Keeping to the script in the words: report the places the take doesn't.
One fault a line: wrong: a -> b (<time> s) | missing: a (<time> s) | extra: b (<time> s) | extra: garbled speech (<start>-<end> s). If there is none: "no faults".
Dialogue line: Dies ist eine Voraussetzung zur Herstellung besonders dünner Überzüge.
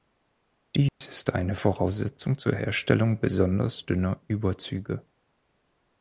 no faults